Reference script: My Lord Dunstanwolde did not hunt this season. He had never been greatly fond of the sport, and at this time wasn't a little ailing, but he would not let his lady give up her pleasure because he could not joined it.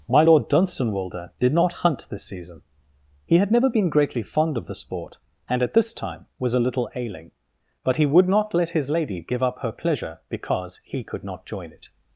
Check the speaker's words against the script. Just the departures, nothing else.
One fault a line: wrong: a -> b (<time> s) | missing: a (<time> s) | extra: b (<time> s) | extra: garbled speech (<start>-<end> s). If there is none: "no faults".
wrong: wasn't -> was (6.4 s)
wrong: joined -> join (11.4 s)